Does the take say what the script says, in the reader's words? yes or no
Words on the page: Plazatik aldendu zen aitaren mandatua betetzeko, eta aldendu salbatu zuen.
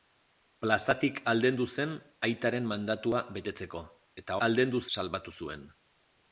yes